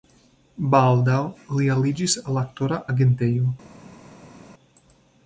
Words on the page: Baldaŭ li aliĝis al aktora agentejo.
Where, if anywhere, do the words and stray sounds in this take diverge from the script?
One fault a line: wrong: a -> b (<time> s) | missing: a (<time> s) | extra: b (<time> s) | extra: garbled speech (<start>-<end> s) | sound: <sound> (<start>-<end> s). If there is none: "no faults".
no faults